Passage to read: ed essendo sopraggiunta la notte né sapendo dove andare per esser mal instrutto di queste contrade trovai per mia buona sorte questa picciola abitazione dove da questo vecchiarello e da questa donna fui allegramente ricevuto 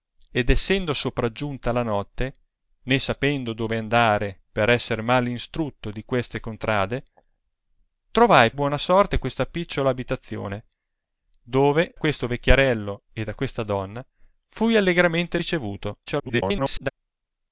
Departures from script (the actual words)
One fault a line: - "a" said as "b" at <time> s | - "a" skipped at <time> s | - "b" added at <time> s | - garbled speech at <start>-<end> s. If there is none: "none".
- "per mia" skipped at 8.5 s
- "da" skipped at 12.0 s
- garbled speech at 16.1-16.9 s